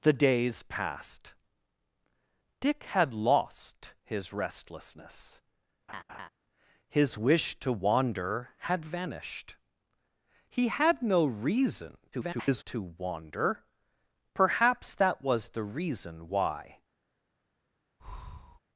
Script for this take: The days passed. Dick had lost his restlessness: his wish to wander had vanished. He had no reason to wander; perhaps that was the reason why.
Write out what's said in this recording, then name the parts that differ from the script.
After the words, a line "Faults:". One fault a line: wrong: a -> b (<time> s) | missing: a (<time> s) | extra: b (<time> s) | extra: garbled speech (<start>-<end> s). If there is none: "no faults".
The days passed. Dick had lost his restlessness: his wish to wander had vanished. He had no reason [garbled] to wander; perhaps that was the reason why.
Faults:
extra: garbled speech (12.1-12.6 s)